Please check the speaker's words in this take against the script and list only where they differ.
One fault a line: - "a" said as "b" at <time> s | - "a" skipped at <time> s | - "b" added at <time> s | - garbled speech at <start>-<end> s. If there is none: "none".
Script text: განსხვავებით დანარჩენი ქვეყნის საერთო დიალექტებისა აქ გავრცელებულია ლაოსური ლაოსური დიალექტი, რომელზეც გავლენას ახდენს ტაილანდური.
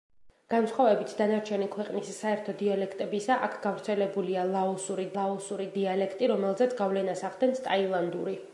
none